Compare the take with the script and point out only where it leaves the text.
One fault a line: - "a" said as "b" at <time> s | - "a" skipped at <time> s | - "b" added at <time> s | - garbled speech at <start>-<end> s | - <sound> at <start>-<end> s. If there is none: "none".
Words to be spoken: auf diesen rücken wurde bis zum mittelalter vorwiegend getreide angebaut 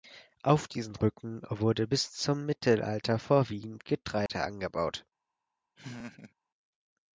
- dropout at 4.3-4.3 s
- laugh at 5.8-6.3 s